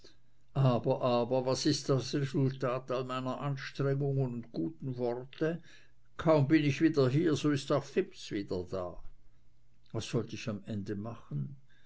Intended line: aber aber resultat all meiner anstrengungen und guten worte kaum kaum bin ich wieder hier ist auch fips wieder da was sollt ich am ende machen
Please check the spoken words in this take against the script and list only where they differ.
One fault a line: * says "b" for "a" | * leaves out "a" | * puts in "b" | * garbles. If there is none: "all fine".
* puts in "was ist das"
* leaves out "kaum"
* puts in "so"